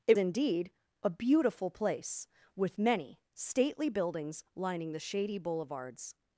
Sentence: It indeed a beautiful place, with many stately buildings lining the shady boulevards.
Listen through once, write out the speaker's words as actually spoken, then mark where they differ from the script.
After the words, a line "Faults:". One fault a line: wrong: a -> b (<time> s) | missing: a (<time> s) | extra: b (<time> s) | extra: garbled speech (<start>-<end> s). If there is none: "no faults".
It indeed a beautiful place, with many stately buildings lining the shady boulevards.
Faults:
no faults